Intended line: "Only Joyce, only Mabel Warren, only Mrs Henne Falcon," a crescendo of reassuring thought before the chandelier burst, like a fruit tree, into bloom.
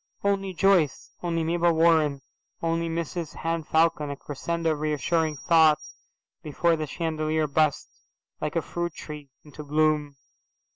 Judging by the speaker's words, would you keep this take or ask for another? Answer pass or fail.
pass